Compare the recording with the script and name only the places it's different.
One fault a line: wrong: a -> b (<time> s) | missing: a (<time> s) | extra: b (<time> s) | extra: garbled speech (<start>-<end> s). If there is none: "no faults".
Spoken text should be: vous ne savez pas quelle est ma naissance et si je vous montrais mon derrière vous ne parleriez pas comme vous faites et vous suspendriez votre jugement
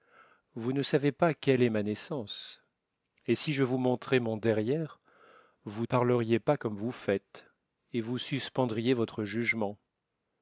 missing: ne (5.8 s)